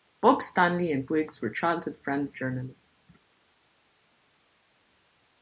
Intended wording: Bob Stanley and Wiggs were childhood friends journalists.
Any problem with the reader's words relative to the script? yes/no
no